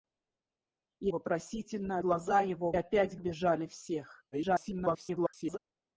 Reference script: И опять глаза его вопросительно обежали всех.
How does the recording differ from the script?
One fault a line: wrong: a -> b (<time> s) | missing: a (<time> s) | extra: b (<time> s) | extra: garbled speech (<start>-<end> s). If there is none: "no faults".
wrong: опять -> вопросительно (1.1 s)
wrong: вопросительно -> опять (2.7 s)
extra: garbled speech (4.3-5.6 s)